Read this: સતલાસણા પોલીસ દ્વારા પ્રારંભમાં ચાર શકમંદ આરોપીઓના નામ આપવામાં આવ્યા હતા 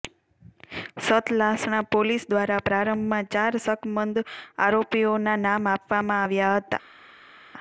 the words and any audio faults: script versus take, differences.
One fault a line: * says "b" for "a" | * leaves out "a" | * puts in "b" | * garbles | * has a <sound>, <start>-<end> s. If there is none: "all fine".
all fine